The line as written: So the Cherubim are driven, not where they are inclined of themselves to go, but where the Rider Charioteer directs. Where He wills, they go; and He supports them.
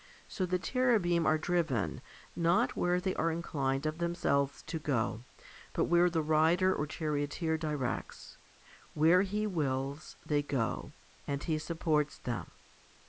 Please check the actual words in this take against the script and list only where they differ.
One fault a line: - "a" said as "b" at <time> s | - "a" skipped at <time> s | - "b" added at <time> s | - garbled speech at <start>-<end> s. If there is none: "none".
- "or" added at 6.7 s